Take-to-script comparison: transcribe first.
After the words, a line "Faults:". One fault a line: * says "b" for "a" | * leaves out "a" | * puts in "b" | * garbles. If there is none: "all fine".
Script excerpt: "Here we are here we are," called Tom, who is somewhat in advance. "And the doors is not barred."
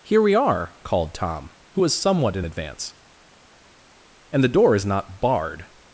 "Here we are," called Tom, who was somewhat in advance. "And the door is not barred."
Faults:
* leaves out "here we are"
* says "was" for "is"
* says "door" for "doors"